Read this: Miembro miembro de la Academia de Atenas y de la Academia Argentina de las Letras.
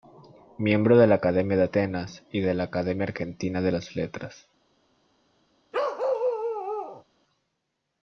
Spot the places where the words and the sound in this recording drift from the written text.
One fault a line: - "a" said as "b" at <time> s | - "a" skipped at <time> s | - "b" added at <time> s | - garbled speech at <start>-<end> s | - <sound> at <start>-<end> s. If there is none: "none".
- "miembro" skipped at 1.0 s
- bark at 5.7-7.0 s